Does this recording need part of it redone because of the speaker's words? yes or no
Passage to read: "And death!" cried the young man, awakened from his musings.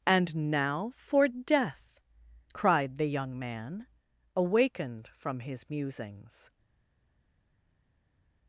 yes